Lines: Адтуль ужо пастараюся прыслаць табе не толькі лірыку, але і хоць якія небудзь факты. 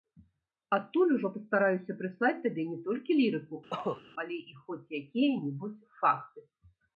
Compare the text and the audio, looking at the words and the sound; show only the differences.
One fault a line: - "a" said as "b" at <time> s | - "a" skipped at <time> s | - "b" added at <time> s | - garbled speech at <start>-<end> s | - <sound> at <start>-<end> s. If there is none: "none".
- cough at 3.7-4.0 s